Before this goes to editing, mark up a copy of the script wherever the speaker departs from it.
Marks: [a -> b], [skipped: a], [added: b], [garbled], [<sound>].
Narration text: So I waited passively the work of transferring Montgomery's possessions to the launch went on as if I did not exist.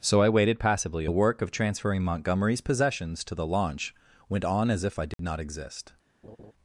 So I waited passively the work of transferring Montgomery's possessions to the launch went on as if I did [dropout] not exist. [laugh]